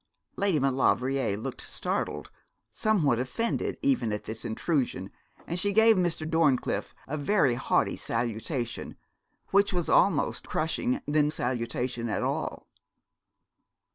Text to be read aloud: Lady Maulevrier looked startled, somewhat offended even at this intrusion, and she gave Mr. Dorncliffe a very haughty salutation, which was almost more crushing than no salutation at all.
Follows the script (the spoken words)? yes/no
no